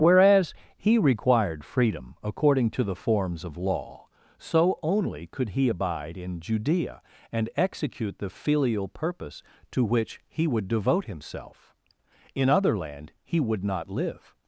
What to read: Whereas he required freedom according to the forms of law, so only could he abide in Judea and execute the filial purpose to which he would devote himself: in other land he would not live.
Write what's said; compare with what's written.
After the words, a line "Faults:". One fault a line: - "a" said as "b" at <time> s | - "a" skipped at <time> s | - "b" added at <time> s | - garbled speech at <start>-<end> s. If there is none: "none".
Whereas he required freedom according to the forms of law, so only could he abide in Judea and execute the filial purpose to which he would devote himself: in other land he would not live.
Faults:
none